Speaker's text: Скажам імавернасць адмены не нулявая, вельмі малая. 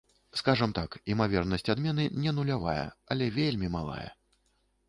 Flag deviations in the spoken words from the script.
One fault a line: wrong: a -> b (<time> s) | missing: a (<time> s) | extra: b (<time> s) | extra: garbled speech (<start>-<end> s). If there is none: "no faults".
extra: так (0.8 s)
extra: але (3.1 s)